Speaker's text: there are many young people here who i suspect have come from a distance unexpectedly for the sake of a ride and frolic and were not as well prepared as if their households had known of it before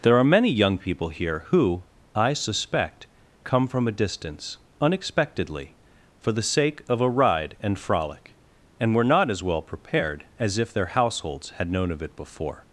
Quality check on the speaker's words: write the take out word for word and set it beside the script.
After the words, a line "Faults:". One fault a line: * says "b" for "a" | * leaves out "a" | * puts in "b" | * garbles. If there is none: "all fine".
there are many young people here who i suspect come from a distance unexpectedly for the sake of a ride and frolic and were not as well prepared as if their households had known of it before
Faults:
* leaves out "have"